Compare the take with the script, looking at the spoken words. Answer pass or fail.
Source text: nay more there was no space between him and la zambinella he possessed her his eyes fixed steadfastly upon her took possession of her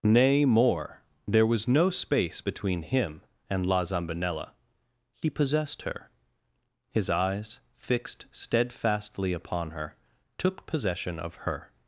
pass